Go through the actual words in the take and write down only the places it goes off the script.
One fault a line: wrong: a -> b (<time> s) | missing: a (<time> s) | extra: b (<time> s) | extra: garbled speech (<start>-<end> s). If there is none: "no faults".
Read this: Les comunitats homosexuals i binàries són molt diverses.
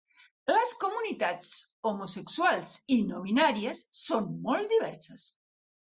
extra: no (3.1 s)